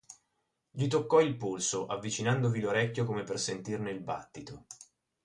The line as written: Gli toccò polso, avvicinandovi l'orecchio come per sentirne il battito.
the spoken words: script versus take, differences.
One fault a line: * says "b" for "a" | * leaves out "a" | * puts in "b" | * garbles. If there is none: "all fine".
* puts in "il"